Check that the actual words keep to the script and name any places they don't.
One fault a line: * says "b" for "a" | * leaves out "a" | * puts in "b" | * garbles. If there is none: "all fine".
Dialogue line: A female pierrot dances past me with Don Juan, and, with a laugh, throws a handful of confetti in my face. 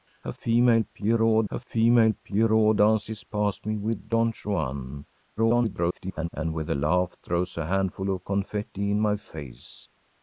* puts in "a female pierrot"
* garbles